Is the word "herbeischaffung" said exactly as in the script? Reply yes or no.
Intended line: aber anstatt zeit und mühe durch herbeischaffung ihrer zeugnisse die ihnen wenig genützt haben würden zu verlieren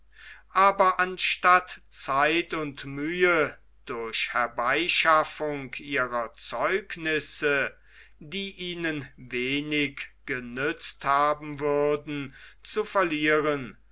yes